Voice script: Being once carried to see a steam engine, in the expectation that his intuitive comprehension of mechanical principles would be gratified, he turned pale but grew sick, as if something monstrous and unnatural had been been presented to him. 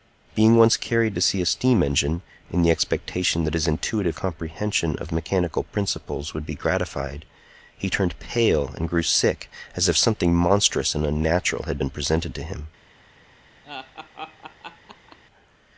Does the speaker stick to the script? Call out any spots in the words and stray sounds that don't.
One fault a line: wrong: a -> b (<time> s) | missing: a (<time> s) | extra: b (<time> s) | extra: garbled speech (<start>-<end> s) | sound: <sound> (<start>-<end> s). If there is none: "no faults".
wrong: but -> and (8.8 s)
missing: been (11.9 s)
sound: laugh (13.6-15.2 s)